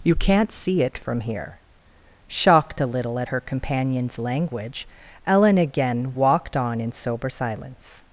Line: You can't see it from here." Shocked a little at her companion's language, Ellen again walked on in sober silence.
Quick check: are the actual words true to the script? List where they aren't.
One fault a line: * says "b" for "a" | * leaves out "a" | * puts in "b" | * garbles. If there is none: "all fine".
all fine